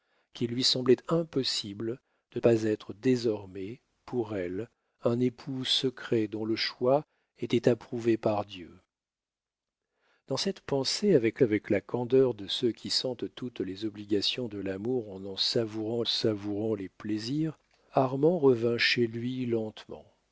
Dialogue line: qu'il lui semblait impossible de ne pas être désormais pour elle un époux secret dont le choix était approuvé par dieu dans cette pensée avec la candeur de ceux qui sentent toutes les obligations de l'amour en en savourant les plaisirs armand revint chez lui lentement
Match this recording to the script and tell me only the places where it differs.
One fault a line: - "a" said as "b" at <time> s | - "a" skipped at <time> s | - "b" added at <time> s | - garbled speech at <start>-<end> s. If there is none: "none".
- "ne" skipped at 2.4 s
- "avec" added at 11.4 s
- "savourant" added at 16.1 s